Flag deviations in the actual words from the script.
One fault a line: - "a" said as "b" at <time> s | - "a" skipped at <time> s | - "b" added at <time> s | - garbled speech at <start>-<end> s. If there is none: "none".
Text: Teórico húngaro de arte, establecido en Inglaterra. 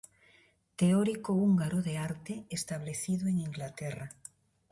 none